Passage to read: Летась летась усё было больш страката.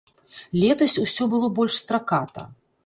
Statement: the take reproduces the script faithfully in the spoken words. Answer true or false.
false